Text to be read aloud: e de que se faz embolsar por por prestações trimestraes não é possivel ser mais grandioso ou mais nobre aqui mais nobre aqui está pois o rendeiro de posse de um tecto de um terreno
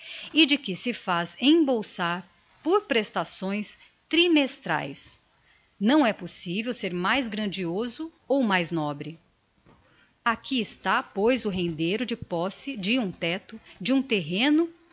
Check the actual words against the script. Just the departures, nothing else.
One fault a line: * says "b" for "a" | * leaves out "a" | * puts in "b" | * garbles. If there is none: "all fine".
* leaves out "por"
* leaves out "mais nobre aqui"